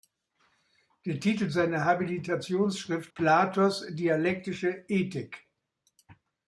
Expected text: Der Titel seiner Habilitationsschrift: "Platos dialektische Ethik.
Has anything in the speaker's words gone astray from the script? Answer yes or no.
no